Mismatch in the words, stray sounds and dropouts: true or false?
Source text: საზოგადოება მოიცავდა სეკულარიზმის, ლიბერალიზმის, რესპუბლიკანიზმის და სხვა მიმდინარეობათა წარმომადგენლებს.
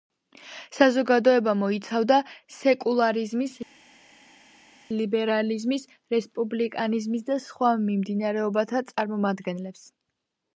false